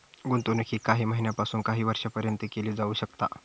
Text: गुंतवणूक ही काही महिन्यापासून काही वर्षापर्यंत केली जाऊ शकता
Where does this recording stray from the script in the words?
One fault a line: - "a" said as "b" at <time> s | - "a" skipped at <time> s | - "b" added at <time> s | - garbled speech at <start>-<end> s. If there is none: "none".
none